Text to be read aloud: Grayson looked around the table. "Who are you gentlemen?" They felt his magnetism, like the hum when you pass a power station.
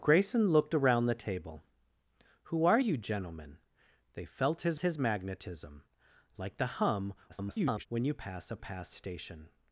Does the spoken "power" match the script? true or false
false